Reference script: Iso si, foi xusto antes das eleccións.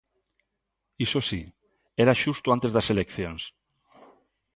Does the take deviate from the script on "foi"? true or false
true